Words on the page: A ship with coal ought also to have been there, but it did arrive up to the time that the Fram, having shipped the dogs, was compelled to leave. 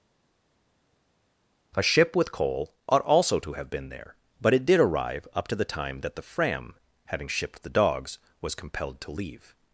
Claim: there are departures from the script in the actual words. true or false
false